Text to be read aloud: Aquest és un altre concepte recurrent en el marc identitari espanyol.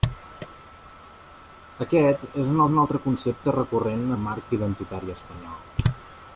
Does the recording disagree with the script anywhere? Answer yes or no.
yes